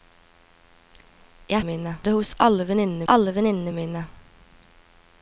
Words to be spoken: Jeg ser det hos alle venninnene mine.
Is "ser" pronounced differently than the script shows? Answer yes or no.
yes